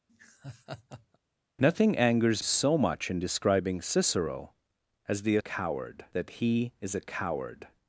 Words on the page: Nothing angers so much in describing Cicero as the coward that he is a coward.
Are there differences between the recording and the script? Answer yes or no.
no